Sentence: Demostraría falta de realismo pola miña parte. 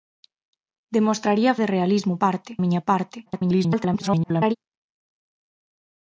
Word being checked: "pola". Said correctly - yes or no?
no